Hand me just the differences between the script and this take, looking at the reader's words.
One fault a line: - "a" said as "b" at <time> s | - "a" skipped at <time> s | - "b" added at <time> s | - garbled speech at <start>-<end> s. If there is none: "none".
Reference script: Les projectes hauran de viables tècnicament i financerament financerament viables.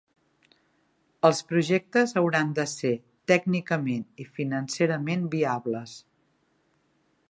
- "Les" said as "Els" at 1.3 s
- "viables" said as "ser" at 2.7 s
- "financerament" skipped at 5.3 s